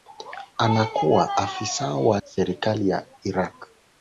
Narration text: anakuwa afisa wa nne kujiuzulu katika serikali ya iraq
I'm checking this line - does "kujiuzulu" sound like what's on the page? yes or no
no